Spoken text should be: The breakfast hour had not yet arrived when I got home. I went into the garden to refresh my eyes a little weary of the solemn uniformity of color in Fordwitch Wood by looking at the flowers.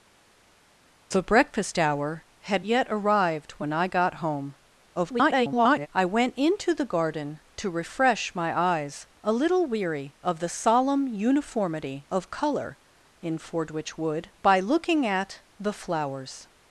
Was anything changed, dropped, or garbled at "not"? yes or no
yes